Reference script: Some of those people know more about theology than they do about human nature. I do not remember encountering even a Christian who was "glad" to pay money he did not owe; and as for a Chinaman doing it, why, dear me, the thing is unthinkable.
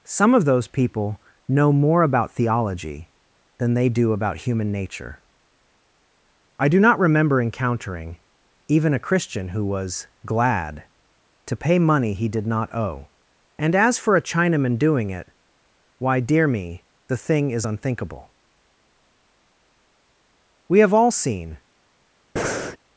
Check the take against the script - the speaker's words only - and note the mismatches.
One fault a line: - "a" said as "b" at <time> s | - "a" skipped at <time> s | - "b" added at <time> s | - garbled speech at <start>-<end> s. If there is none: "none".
- "We have all seen" added at 20.7 s